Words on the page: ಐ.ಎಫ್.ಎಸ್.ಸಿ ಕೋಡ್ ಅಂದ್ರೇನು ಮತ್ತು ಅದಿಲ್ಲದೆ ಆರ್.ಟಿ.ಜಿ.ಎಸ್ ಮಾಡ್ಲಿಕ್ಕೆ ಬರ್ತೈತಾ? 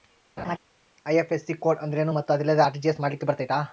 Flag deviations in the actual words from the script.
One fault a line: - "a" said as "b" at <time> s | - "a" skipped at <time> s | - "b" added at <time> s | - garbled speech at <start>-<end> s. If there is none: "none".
none